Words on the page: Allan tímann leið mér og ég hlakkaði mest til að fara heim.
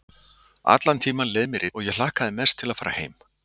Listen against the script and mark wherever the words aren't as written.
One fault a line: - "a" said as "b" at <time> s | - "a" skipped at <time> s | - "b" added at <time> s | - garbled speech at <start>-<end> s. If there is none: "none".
none